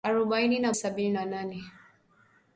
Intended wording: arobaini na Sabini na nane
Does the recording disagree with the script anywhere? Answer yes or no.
no